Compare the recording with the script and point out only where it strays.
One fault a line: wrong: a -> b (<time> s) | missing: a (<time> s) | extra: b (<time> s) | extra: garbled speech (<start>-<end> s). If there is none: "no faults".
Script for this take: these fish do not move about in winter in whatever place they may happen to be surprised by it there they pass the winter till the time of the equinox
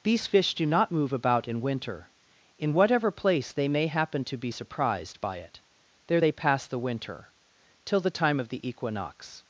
no faults